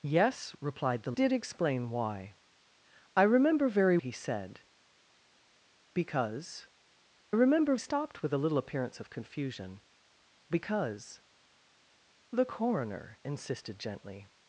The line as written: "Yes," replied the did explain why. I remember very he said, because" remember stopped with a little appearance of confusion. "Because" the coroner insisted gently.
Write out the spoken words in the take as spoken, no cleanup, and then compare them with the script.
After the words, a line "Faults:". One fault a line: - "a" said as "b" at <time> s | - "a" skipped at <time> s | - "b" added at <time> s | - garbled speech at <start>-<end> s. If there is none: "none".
"Yes," replied the did explain why. I remember very he said, because" remember stopped with a little appearance of confusion. "Because" the coroner insisted gently.
Faults:
none